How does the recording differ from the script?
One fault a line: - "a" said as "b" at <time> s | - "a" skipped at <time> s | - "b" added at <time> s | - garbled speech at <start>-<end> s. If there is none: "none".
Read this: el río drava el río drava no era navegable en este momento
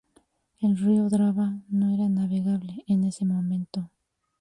- "el río drava" skipped at 1.6 s
- "este" said as "ese" at 3.0 s